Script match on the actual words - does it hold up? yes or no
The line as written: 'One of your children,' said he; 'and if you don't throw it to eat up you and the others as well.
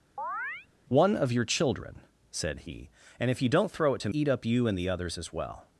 yes